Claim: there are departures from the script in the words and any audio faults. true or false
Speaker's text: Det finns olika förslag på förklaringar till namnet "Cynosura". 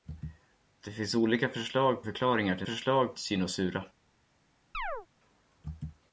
true